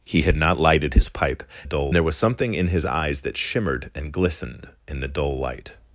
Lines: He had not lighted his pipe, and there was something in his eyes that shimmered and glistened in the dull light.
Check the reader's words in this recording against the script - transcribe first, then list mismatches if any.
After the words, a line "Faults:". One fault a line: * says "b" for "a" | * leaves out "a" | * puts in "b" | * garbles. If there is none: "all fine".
He had not lighted his pipe, dull there was something in his eyes that shimmered and glistened in the dull light.
Faults:
* says "dull" for "and"